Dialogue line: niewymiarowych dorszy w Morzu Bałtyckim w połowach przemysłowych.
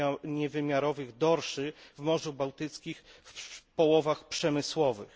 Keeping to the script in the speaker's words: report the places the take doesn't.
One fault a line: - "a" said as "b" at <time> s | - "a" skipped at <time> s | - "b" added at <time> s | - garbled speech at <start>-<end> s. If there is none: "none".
none